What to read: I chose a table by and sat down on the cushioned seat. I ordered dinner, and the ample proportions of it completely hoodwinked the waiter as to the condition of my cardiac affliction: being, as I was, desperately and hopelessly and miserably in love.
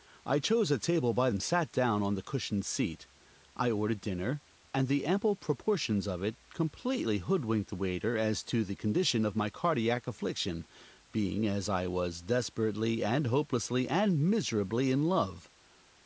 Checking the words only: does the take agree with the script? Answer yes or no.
yes